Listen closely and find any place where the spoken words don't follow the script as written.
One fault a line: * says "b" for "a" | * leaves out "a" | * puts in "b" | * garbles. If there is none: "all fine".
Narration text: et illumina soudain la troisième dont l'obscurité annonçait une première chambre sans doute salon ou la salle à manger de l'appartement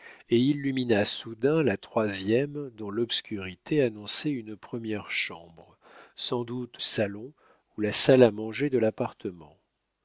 all fine